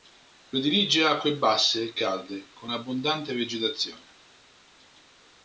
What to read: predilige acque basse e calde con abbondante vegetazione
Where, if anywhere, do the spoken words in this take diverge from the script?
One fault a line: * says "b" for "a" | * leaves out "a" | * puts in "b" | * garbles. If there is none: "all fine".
all fine